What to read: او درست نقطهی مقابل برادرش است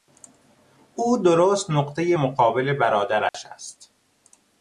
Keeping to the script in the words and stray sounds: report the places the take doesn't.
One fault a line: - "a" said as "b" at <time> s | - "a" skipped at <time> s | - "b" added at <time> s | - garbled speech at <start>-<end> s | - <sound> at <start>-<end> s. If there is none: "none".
- dropout at 3.3-3.3 s